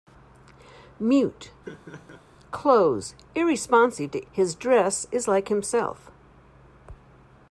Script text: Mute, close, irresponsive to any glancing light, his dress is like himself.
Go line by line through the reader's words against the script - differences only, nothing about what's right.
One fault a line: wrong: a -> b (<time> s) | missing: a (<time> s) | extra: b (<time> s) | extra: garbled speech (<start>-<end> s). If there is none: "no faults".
missing: any glancing light (4.3 s)